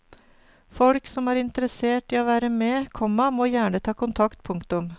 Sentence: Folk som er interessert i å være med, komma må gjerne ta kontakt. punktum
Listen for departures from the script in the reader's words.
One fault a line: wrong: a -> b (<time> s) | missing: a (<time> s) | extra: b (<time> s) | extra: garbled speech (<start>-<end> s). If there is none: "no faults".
no faults